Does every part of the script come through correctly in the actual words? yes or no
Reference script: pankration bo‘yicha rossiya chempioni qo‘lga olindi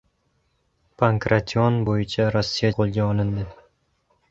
no